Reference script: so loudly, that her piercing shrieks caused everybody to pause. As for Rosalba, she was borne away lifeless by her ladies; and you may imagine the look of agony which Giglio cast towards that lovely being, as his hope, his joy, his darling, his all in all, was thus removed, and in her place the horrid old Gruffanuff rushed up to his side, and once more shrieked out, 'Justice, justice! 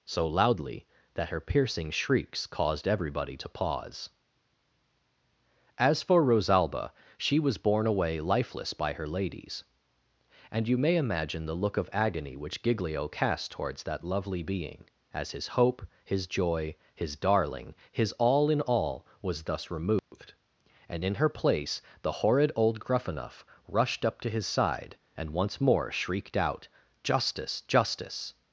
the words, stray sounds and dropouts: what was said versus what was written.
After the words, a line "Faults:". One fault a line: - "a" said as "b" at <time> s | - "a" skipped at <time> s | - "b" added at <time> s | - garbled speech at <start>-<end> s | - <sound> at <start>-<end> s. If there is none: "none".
so loudly, that her piercing shrieks caused everybody to pause. As for Rosalba, she was borne away lifeless by her ladies; and you may imagine the look of agony which Giglio cast towards that lovely being, as his hope, his joy, his darling, his all in all, was thus removed, and in her place the horrid old Gruffanuff rushed up to his side, and once more shrieked out, 'Justice, justice!
Faults:
- dropout at 20.0-20.1 s